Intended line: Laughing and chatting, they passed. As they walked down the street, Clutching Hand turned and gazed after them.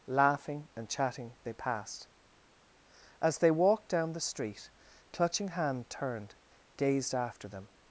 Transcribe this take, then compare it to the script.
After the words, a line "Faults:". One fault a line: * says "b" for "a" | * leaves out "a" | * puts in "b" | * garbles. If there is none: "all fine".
Laughing and chatting, they passed. As they walked down the street, Clutching Hand turned gazed after them.
Faults:
* leaves out "and"